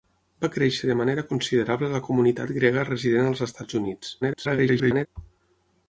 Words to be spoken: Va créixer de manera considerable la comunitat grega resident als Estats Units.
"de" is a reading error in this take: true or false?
false